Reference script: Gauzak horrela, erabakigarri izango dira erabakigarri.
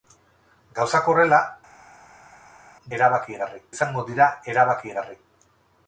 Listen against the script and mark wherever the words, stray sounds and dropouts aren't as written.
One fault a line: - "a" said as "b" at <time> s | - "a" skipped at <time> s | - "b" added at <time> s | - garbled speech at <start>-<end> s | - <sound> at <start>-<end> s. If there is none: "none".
none